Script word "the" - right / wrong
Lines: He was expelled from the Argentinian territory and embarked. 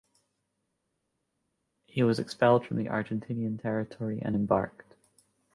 right